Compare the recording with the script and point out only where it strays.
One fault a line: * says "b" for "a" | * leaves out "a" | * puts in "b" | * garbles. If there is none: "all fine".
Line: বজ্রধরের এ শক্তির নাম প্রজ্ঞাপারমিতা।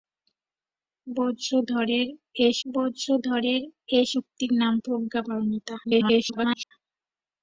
* puts in "বজ্রধরের এ"
* garbles